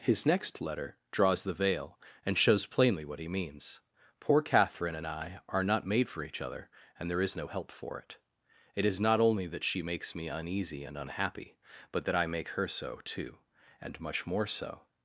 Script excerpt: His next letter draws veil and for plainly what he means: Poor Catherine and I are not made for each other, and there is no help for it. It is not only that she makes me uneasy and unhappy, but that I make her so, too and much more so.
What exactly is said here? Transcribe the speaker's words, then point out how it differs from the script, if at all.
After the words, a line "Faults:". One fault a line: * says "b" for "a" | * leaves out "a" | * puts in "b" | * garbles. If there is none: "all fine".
His next letter draws the veil and shows plainly what he means: Poor Catherine and I are not made for each other, and there is no help for it. It is not only that she makes me uneasy and unhappy, but that I make her so, too and much more so.
Faults:
* puts in "the"
* says "shows" for "for"